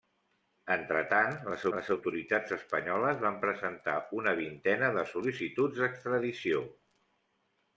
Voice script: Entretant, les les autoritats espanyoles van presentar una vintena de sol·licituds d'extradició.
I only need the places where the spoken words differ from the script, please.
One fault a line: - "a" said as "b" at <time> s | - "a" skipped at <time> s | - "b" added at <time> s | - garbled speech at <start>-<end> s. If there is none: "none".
none